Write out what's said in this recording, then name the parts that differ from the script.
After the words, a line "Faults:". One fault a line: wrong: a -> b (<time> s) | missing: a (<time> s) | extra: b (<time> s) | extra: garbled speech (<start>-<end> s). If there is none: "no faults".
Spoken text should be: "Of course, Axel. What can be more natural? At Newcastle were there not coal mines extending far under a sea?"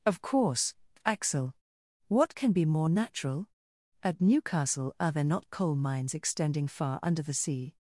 "Of course, Axel. What can be more natural? At Newcastle are there not coal mines extending far under the sea?"
Faults:
wrong: were -> are (5.0 s)
wrong: a -> the (7.2 s)